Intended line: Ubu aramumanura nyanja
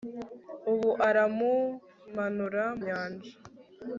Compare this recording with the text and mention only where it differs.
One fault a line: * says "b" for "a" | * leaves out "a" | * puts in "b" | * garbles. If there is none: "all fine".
all fine